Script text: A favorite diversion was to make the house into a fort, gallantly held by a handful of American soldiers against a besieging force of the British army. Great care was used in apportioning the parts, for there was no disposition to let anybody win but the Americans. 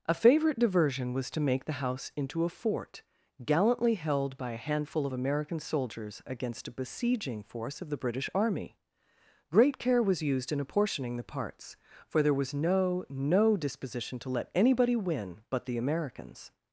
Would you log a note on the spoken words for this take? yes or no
yes